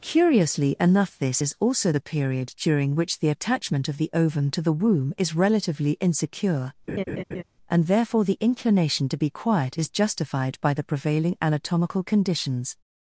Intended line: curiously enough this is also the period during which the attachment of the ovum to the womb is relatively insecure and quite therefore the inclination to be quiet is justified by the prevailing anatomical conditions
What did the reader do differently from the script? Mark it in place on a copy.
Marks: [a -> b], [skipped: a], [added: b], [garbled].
curiously enough this is also the period during which the attachment of the ovum to the womb is relatively insecure and [skipped: quite] therefore the inclination to be quiet is justified by the prevailing anatomical conditions